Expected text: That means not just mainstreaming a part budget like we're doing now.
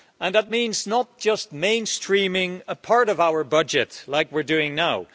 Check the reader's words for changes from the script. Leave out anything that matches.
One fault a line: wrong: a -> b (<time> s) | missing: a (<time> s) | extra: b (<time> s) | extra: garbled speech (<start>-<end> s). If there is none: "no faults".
extra: of our (3.1 s)